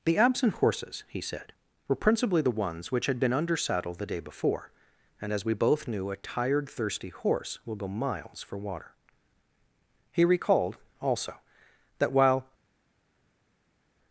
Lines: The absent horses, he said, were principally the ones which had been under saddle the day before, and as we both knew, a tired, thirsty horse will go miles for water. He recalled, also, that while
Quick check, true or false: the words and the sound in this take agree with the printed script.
true